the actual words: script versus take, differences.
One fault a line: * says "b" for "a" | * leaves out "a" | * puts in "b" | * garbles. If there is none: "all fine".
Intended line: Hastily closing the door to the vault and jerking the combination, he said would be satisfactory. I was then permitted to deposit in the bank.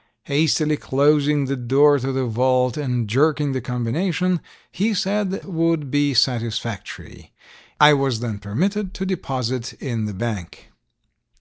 all fine